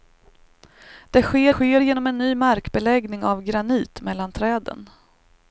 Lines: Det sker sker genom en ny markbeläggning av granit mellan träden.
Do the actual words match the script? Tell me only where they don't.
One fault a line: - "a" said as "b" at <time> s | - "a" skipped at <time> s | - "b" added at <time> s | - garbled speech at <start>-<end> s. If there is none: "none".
none